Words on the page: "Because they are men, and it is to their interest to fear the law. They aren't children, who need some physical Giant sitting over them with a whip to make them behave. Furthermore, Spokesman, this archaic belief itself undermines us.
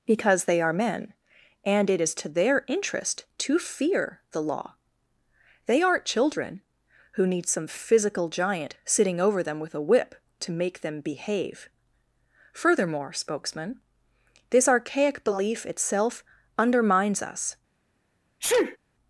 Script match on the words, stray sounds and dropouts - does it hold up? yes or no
no